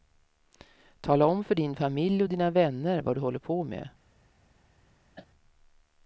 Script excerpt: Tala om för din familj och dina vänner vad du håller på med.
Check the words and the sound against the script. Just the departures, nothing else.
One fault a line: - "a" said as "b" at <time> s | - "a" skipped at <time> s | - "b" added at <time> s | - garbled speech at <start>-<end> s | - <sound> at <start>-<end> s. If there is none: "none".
- cough at 5.2-5.3 s